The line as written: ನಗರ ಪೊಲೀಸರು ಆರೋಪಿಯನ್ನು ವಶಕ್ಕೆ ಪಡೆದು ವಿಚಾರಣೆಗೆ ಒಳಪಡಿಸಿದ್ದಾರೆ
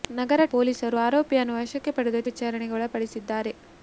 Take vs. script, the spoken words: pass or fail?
pass